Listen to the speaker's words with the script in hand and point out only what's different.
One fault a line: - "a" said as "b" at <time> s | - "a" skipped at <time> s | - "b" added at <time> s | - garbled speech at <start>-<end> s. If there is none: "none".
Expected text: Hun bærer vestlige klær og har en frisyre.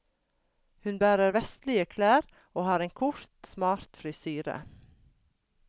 - "kort smart" added at 3.0 s